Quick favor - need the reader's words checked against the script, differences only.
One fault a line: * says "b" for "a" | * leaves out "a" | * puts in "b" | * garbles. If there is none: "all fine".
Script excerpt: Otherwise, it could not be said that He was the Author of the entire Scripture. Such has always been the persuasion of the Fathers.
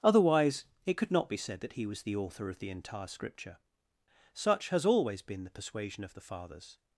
all fine